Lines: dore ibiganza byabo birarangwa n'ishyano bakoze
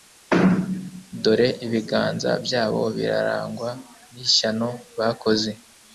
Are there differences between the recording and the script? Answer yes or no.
no